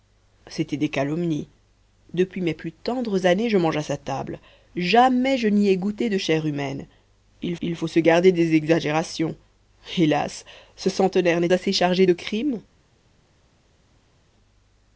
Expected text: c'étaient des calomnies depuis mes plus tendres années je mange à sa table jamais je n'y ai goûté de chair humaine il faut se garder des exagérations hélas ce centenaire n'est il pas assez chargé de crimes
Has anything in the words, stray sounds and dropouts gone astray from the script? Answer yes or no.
yes